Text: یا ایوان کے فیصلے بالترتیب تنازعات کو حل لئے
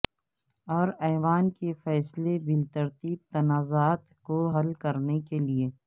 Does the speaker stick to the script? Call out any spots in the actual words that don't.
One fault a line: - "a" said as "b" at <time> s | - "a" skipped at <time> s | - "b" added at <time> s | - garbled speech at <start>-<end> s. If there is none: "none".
- "یا" said as "اور" at 0.7 s
- "کرنے کے" added at 4.8 s